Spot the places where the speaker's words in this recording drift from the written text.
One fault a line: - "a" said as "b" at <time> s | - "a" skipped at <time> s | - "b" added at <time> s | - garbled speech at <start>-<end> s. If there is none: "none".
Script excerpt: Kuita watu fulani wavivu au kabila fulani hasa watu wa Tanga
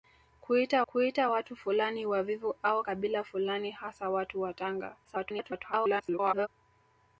- "kuita" added at 0.9 s
- garbled speech at 5.0-6.5 s